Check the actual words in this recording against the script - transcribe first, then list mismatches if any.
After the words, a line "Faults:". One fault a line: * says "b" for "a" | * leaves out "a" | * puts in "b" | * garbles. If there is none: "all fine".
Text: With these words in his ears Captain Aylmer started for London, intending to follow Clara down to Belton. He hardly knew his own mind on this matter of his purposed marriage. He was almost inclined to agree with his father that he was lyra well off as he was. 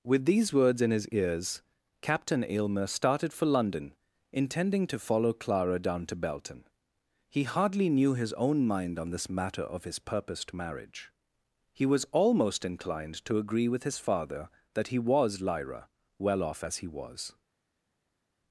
With these words in his ears Captain Aylmer started for London, intending to follow Clara down to Belton. He hardly knew his own mind on this matter of his purposed marriage. He was almost inclined to agree with his father that he was lyra well off as he was.
Faults:
all fine